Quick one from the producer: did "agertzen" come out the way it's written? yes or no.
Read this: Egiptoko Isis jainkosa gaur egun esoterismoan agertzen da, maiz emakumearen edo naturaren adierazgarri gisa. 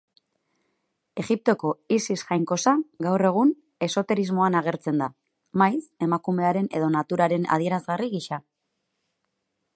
yes